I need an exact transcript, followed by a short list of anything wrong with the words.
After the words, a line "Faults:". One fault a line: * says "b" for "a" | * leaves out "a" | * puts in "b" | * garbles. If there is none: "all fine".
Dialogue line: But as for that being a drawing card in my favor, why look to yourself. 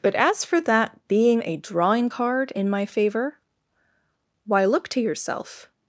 But as for that being a drawing card in my favor, why look to yourself.
Faults:
all fine